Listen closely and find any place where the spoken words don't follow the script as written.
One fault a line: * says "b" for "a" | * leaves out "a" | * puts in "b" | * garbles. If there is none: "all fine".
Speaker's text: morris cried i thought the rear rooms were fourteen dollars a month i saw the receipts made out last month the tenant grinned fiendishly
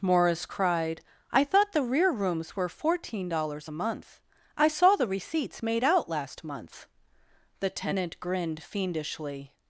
all fine